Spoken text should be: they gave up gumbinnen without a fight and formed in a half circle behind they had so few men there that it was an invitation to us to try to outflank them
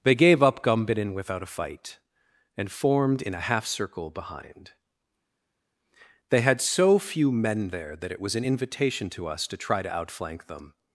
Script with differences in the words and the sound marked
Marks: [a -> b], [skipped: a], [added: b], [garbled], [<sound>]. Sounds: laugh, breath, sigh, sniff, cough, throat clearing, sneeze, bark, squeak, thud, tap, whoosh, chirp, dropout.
they gave up gumbinnen without a fight and formed in a half circle behind they had so few men there that it was an invitation to us to try to outflank them